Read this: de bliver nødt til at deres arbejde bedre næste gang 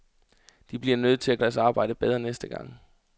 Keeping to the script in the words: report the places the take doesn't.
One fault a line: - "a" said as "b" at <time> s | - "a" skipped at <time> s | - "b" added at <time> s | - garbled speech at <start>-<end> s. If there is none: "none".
none